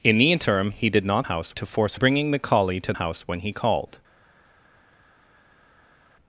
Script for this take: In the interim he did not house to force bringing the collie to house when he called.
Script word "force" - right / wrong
right